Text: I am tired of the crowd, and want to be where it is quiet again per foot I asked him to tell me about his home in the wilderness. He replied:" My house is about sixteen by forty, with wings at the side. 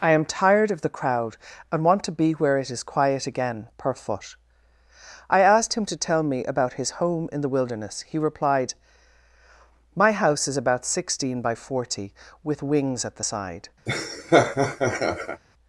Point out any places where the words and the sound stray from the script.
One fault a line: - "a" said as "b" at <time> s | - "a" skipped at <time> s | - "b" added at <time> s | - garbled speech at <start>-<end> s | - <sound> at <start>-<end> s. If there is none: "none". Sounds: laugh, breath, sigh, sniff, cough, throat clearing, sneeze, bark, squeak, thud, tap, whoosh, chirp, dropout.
- laugh at 13.9-15.4 s